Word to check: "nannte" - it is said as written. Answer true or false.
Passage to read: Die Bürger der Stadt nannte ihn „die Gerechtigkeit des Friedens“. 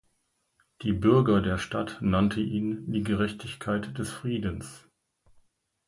true